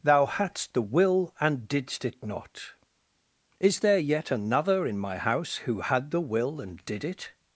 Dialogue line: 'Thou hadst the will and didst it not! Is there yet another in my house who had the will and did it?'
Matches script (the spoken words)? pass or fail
pass